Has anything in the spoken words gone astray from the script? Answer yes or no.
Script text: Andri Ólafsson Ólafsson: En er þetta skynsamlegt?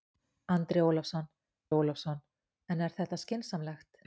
no